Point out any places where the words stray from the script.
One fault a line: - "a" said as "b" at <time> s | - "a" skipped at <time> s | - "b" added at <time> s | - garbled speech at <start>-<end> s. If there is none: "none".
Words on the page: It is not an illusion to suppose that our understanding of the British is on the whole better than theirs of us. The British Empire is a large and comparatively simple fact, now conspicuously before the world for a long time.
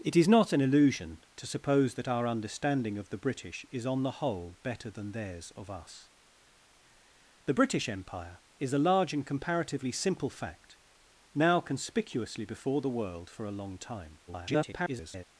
- garbled speech at 14.3-15.2 s